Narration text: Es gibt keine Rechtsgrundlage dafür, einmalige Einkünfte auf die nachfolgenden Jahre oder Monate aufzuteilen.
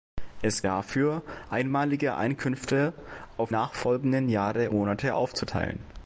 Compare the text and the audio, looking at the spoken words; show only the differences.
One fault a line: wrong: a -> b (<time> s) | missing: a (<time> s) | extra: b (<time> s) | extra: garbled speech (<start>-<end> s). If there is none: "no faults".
missing: gibt keine Rechtsgrundlage (0.7 s)
missing: die (3.5 s)
missing: oder (4.7 s)